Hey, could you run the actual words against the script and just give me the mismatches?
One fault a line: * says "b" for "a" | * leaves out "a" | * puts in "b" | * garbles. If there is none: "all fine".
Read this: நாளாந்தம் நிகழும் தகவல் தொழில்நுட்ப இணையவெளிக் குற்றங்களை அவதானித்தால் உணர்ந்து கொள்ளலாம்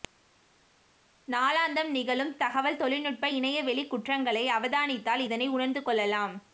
* puts in "இதனை"